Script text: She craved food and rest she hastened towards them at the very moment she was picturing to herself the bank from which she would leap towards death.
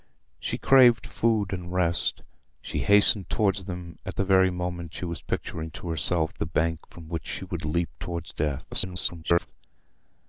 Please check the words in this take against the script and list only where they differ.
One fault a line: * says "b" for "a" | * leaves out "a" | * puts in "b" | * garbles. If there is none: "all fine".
* garbles